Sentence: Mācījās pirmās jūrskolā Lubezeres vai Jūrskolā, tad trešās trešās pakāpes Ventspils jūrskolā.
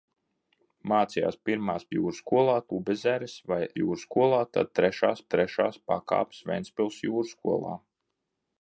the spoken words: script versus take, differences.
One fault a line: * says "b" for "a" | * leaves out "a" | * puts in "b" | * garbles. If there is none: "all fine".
all fine